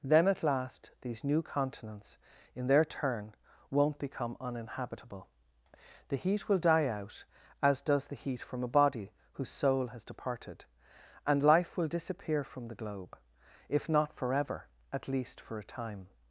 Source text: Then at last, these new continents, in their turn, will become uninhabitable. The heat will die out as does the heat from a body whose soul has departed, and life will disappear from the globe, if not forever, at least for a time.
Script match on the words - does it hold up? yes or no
no